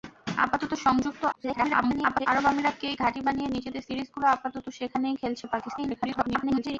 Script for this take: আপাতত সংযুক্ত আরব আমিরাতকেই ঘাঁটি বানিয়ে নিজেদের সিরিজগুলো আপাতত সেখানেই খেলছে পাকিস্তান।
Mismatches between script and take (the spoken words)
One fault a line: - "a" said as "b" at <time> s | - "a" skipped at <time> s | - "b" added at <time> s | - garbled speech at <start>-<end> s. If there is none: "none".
- garbled speech at 1.3-2.3 s
- garbled speech at 5.8-6.8 s